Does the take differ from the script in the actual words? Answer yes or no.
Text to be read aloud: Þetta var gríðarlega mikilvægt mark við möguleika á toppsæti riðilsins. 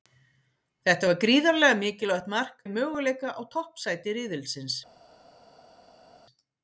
no